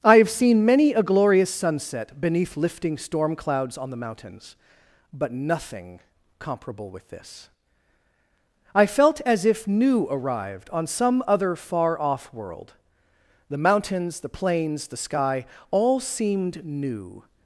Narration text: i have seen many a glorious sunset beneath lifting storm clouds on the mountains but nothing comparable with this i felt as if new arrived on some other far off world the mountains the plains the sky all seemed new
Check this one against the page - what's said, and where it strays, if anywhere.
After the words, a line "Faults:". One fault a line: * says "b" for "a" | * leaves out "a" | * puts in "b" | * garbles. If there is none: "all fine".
i have seen many a glorious sunset beneath lifting storm clouds on the mountains but nothing comparable with this i felt as if new arrived on some other far off world the mountains the plains the sky all seemed new
Faults:
all fine